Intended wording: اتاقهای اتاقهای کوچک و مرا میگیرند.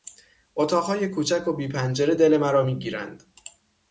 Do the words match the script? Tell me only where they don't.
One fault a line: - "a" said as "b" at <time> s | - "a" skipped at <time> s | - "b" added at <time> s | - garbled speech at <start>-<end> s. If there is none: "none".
- "اتاقهای" skipped at 1.1 s
- "بی پنجره دل" added at 1.5 s